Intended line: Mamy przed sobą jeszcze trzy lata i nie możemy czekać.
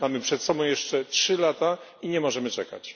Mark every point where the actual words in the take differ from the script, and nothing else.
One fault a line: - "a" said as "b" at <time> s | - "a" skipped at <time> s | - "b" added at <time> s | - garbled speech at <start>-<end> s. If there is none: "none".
none